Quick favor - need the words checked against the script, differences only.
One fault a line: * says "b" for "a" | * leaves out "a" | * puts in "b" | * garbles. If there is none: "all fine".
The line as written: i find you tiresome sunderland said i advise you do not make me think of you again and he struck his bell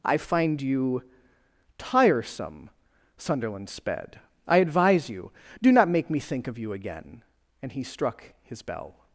* says "sped" for "said"